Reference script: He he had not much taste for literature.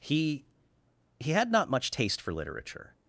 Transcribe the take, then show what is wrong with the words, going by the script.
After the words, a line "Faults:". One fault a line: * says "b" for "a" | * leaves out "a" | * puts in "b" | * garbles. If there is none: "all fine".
He he had not much taste for literature.
Faults:
all fine